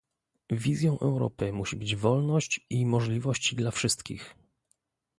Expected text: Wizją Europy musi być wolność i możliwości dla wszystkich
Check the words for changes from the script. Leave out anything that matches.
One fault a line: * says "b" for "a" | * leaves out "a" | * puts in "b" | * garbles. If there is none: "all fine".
all fine